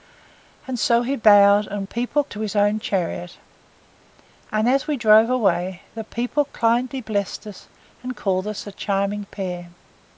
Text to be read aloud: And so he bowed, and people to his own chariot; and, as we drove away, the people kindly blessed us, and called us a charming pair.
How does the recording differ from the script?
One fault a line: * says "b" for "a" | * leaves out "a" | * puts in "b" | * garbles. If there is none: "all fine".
all fine